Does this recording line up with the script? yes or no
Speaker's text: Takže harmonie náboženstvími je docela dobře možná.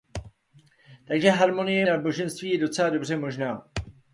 yes